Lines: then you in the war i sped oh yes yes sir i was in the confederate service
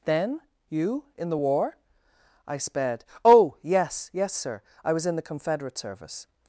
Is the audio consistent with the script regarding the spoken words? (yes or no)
yes